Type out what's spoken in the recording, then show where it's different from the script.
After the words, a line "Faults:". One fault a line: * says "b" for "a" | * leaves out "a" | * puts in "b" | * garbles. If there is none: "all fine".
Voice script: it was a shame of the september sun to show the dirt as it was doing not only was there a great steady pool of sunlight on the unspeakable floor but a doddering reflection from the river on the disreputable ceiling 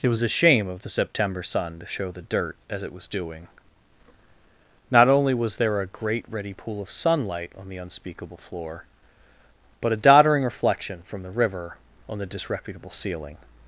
it was a shame of the september sun to show the dirt as it was doing not only was there a great ready pool of sunlight on the unspeakable floor but a doddering reflection from the river on the disreputable ceiling
Faults:
* says "ready" for "steady"